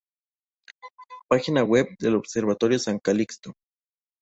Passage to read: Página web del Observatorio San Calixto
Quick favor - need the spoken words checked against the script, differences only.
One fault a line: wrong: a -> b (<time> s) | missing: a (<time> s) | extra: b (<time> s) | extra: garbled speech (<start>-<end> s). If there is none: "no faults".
no faults